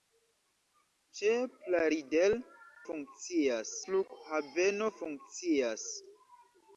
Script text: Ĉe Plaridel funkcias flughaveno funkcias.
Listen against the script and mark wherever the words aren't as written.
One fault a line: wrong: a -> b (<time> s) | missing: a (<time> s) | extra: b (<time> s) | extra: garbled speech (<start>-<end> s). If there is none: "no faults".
no faults